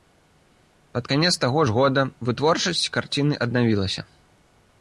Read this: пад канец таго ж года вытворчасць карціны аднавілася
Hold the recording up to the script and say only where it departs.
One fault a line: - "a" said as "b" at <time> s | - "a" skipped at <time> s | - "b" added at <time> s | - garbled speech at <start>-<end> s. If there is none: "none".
none